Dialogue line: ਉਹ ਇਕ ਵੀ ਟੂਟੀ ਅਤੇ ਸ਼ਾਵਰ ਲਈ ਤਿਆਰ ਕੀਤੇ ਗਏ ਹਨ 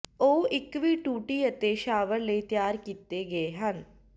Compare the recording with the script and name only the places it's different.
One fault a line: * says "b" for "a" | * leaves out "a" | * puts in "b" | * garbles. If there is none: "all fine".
all fine